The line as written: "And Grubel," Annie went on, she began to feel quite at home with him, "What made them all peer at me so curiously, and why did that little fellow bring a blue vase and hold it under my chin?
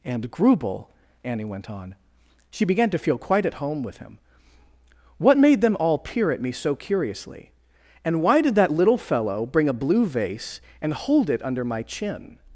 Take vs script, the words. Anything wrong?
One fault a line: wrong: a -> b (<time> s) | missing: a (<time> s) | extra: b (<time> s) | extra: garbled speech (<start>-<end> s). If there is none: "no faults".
no faults